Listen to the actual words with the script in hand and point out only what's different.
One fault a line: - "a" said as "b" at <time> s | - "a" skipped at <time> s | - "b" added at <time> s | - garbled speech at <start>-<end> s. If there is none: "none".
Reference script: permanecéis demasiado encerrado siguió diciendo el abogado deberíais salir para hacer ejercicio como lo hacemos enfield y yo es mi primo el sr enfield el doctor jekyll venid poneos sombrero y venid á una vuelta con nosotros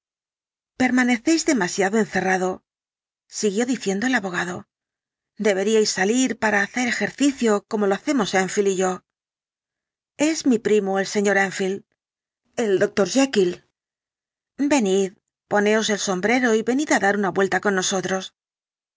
- "el" added at 15.9 s
- "dar" added at 17.1 s